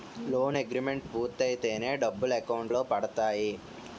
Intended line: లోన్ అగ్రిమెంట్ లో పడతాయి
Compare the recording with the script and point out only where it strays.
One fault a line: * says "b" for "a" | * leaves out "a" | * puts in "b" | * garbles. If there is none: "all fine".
* puts in "పూర్తయితేనే డబ్బులు అకౌంట్"